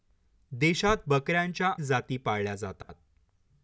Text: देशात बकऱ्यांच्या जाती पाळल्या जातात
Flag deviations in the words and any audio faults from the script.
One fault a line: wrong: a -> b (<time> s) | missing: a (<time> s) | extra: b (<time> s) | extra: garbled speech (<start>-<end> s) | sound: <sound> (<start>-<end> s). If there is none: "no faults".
sound: dropout (2.8-2.9 s)